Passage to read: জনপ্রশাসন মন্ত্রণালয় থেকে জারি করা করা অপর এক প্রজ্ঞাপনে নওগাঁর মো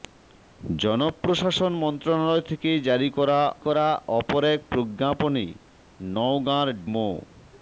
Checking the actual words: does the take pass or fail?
pass